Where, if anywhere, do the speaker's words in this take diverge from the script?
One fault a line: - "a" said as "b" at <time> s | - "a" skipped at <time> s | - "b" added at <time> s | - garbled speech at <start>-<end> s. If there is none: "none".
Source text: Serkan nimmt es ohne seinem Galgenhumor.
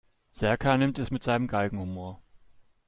- "ohne" said as "mit" at 1.1 s